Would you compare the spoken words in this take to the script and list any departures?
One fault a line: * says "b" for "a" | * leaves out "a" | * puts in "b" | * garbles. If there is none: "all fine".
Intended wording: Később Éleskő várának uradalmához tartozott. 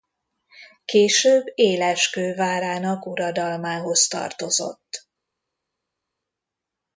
all fine